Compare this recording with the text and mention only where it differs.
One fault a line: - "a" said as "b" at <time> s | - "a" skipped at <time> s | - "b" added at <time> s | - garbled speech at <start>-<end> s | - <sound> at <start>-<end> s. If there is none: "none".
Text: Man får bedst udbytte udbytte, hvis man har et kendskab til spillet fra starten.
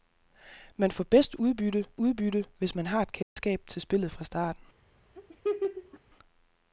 - dropout at 3.2-3.4 s
- laugh at 5.2-6.0 s